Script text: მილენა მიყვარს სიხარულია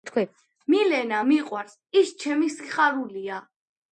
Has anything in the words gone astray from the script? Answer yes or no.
yes